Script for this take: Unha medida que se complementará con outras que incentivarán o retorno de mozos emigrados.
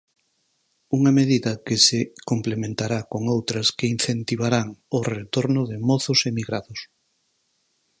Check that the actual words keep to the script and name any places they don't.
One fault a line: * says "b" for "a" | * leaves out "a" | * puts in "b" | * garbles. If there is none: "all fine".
all fine